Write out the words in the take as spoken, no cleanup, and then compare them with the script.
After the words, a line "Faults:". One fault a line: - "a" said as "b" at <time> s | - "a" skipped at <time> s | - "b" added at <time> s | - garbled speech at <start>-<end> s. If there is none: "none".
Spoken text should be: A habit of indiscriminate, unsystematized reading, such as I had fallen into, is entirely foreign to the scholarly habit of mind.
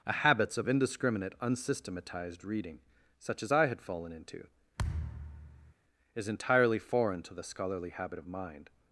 A habits of indiscriminate, unsystematized reading, such as I had fallen into, is entirely foreign to the scholarly habit of mind.
Faults:
- "habit" said as "habits" at 0.1 s